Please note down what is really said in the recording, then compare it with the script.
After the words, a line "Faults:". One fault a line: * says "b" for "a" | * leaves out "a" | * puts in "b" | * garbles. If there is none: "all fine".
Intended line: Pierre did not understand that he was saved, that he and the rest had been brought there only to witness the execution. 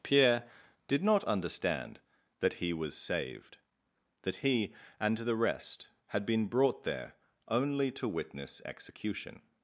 Pierre did not understand that he was saved, that he and the rest had been brought there only to witness execution.
Faults:
* leaves out "the"